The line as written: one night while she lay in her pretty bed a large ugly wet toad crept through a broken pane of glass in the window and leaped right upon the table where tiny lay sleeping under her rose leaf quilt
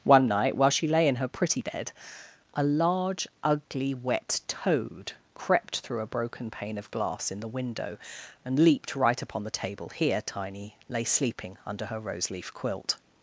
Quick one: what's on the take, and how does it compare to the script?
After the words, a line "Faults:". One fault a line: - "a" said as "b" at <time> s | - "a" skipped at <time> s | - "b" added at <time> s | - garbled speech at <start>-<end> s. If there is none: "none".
one night while she lay in her pretty bed a large ugly wet toad crept through a broken pane of glass in the window and leaped right upon the table here tiny lay sleeping under her rose leaf quilt
Faults:
- "where" said as "here" at 9.9 s